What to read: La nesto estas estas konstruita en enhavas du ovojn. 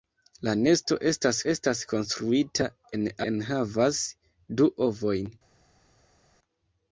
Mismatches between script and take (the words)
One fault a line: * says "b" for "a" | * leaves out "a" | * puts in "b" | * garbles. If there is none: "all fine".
all fine